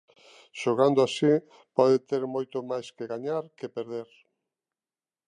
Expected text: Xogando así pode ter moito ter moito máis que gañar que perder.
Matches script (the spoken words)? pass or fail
fail